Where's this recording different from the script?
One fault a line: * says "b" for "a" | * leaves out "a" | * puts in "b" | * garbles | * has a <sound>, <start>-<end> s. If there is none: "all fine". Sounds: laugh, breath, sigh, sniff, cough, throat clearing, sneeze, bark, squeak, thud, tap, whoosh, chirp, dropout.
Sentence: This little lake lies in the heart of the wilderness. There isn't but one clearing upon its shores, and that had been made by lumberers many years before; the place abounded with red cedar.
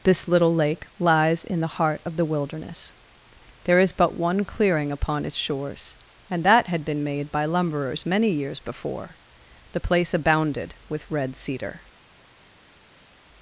* says "is" for "isn't"